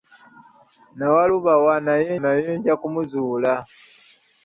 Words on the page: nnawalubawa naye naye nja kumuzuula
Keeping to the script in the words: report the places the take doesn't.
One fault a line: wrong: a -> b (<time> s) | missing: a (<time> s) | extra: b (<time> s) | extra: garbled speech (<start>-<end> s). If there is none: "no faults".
no faults